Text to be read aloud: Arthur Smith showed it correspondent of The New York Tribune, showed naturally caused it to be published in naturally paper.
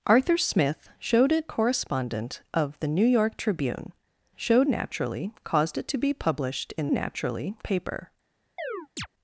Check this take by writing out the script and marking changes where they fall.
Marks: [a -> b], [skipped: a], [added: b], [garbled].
Arthur Smith showed it correspondent of The New York Tribune, showed naturally caused it to be published in naturally paper.